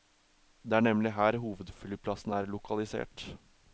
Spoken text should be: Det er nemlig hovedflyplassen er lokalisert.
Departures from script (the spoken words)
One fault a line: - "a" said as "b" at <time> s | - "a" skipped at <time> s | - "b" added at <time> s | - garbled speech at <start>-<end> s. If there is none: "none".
- "her" added at 1.2 s